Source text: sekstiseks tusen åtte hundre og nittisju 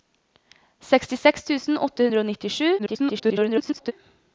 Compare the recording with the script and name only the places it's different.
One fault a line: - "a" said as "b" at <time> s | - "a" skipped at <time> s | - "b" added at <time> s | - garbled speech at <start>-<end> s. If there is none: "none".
- garbled speech at 2.8-3.9 s